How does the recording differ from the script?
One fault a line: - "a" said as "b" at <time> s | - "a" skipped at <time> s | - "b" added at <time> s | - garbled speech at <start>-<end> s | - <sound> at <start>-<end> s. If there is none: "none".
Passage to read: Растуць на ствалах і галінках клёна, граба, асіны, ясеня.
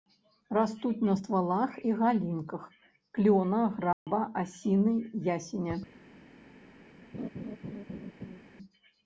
- dropout at 3.9-4.1 s
- laugh at 7.1-8.4 s